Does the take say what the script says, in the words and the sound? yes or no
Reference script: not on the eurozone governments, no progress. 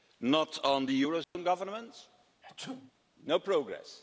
no